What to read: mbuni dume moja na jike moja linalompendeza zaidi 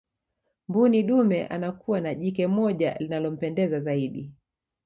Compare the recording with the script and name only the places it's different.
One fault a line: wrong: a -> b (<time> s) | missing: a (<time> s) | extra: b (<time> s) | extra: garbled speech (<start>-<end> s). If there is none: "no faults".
wrong: moja -> anakuwa (1.5 s)